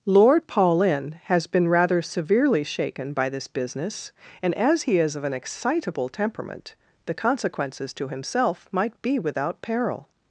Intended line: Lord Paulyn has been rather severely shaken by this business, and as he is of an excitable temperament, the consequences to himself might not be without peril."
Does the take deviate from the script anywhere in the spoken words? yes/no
yes